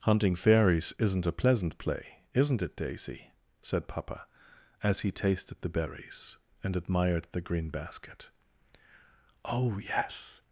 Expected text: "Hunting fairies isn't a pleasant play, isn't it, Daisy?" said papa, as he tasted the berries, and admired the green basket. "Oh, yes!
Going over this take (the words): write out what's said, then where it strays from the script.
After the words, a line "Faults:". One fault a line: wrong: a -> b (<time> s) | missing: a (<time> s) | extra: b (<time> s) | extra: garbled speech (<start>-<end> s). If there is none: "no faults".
"Hunting fairies isn't a pleasant play, isn't it, Daisy?" said papa, as he tasted the berries, and admired the green basket. "Oh, yes!
Faults:
no faults